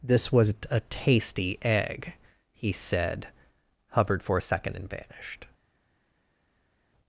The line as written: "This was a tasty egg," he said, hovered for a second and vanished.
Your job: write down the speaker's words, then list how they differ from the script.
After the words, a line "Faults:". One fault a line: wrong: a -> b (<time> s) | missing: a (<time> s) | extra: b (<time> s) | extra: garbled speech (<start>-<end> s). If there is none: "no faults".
"This was a tasty egg," he said, hovered for a second and vanished.
Faults:
no faults